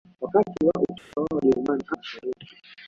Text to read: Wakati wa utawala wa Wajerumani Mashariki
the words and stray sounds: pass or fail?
fail